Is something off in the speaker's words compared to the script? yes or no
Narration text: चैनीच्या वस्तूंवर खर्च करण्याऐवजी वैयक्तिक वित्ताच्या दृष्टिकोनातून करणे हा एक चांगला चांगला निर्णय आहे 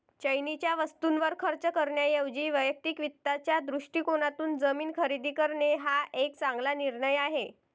yes